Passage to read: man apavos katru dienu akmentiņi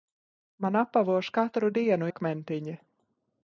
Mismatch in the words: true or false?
false